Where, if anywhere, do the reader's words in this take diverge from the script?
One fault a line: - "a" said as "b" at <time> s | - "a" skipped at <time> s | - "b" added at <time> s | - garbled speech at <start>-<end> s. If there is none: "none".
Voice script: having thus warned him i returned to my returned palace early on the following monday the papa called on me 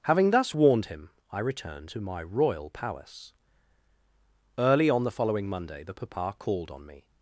- "returned" said as "royal" at 2.2 s